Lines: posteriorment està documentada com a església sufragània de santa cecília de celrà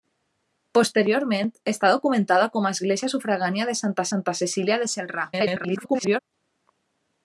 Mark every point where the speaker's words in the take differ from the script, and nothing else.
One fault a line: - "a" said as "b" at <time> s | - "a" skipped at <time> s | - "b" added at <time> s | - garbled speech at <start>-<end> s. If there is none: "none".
- "santa" added at 4.1 s
- garbled speech at 5.3-6.2 s